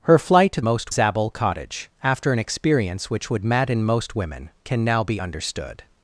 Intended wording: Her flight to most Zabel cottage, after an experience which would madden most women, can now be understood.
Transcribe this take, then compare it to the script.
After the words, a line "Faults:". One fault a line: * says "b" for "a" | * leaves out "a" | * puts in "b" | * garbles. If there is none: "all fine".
Her flight to most Zabel cottage, after an experience which would madden most women, can now be understood.
Faults:
all fine